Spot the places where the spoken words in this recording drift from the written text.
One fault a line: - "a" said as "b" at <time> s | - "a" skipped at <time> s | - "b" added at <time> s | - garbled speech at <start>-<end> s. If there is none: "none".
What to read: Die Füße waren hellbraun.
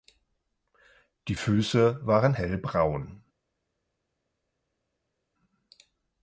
none